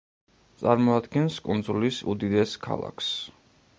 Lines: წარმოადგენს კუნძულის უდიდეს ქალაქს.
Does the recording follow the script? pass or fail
pass